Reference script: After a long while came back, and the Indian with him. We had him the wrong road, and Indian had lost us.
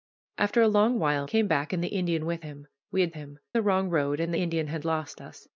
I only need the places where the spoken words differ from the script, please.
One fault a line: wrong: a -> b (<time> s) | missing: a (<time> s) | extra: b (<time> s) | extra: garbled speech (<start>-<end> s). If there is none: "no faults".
no faults